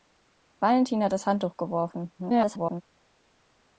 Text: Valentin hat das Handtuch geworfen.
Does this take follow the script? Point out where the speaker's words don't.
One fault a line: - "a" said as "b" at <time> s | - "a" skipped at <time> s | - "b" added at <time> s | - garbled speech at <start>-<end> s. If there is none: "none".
- garbled speech at 2.2-2.8 s